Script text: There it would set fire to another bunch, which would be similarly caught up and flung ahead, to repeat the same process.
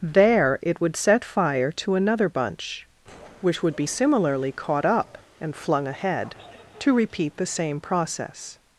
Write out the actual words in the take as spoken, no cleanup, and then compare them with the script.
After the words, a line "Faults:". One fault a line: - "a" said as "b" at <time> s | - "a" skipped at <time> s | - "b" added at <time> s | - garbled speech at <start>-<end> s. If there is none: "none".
There it would set fire to another bunch, which would be similarly caught up and flung ahead, to repeat the same process.
Faults:
none